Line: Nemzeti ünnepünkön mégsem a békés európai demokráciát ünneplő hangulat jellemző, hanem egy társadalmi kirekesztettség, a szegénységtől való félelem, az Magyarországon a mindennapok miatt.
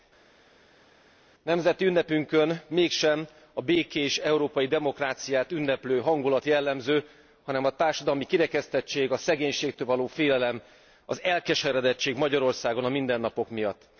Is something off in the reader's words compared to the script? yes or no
yes